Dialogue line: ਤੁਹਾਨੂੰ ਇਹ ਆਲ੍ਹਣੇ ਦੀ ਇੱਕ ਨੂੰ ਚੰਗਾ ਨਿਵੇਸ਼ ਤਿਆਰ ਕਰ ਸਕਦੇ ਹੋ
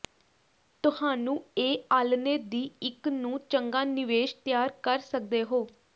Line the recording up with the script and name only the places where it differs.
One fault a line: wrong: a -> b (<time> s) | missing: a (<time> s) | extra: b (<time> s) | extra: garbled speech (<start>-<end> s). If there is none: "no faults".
no faults